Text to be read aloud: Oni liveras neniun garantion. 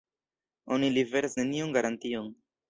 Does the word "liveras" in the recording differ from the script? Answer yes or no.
no